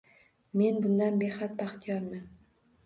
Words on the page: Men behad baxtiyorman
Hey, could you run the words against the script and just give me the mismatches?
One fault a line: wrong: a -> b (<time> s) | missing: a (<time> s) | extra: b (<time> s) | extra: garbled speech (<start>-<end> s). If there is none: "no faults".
extra: bundan (0.8 s)